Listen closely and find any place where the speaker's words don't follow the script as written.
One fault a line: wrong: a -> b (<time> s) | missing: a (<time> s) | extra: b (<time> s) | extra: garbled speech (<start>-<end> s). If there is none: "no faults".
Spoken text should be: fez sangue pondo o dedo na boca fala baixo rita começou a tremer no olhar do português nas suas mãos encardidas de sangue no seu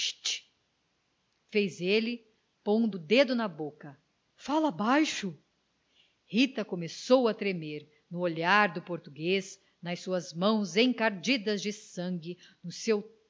wrong: sangue -> ele (1.8 s)